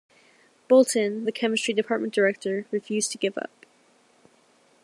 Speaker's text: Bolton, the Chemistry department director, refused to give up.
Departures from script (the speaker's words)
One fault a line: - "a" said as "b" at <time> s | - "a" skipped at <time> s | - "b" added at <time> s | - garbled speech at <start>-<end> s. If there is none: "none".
none